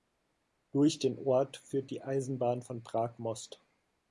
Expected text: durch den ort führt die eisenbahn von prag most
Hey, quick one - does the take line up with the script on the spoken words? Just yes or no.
yes